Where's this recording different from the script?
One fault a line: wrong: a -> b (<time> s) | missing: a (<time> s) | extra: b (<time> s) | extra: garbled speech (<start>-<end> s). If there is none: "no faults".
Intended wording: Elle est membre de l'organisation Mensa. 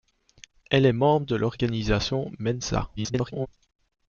extra: garbled speech (3.0-3.5 s)